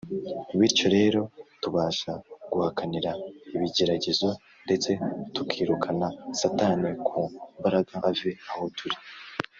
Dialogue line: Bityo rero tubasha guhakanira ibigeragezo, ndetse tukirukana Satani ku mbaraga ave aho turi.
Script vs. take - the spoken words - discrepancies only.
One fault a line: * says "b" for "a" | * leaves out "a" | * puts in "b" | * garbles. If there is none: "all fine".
all fine